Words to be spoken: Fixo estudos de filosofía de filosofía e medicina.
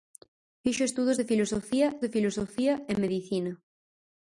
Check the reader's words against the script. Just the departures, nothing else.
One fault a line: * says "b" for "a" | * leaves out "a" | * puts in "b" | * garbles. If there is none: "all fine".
all fine